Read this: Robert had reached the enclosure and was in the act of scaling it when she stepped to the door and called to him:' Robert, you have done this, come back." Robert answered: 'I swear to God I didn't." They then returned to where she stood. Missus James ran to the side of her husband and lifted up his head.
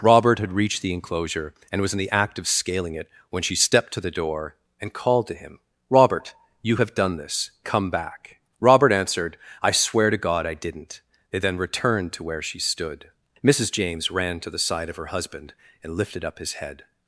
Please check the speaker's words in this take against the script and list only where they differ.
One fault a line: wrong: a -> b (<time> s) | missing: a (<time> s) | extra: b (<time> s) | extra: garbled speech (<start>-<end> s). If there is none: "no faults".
no faults